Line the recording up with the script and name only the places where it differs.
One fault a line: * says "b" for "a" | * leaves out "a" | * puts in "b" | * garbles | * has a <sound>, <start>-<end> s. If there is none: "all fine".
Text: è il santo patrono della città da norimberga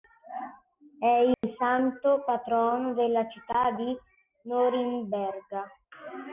* has a dropout, 1.3-1.4 s
* says "di" for "da"